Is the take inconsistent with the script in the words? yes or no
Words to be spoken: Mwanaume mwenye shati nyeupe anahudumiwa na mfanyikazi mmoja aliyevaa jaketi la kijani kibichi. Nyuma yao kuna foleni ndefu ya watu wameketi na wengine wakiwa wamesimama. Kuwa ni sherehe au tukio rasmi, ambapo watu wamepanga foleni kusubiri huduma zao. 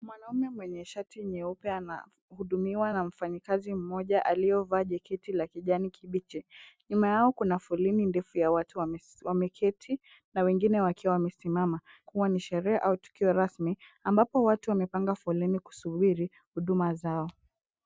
no